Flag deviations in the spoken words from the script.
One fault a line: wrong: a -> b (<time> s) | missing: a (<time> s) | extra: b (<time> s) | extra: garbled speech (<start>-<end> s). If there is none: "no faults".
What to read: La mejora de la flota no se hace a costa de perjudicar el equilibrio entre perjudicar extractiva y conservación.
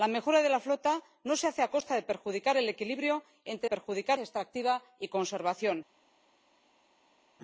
no faults